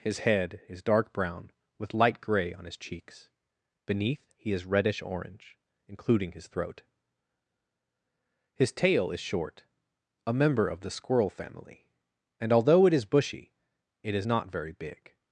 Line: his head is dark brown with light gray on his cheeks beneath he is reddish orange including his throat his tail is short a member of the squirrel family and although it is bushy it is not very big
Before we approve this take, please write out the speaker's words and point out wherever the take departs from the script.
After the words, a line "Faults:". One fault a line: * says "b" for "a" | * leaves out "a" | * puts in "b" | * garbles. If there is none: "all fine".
his head is dark brown with light gray on his cheeks beneath he is reddish orange including his throat his tail is short a member of the squirrel family and although it is bushy it is not very big
Faults:
all fine